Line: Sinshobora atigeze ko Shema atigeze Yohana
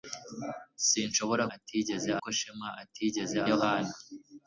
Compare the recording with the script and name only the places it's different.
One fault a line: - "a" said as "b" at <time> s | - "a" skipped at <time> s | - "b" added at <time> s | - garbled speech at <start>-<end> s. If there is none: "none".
none